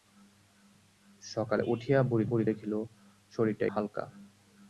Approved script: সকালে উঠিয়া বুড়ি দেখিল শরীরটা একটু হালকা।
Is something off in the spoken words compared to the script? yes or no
yes